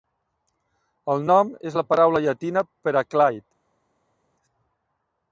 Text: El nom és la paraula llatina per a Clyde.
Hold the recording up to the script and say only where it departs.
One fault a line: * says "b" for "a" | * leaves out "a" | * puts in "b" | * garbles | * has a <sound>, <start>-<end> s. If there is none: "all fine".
all fine